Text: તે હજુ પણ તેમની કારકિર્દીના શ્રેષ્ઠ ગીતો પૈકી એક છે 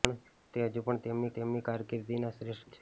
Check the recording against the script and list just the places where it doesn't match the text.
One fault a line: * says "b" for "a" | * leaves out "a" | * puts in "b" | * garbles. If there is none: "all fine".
* puts in "તેમની"
* leaves out "ગીતો પૈકી એક"